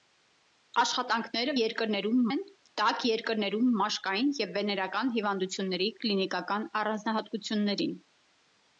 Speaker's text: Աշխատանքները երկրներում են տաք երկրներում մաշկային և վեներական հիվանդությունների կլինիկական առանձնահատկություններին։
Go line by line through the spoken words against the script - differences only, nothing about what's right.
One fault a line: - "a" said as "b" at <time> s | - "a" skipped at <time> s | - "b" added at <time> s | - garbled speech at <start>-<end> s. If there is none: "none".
none